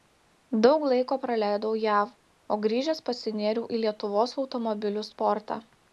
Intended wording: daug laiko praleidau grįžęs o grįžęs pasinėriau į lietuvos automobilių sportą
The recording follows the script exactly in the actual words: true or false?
false